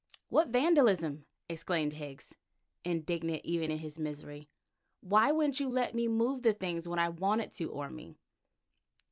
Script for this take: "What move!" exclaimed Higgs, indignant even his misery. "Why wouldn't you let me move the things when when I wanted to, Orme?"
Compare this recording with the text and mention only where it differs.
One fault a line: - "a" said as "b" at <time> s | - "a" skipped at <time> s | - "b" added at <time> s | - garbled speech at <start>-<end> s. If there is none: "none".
- "move" said as "vandalism" at 0.5 s
- "in" added at 3.7 s
- "when" skipped at 7.0 s